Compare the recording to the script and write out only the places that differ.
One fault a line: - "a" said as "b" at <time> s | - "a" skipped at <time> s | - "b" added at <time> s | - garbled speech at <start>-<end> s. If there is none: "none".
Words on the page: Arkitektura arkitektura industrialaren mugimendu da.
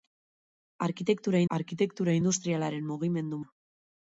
none